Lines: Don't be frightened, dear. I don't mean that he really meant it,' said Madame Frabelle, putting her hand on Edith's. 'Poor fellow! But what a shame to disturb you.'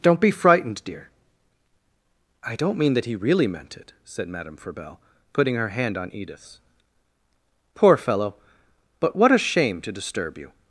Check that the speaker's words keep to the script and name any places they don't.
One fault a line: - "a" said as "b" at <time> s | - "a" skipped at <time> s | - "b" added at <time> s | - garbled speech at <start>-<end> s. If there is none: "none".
none